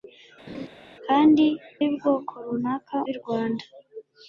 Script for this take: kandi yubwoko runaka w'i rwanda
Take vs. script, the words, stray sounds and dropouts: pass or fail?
fail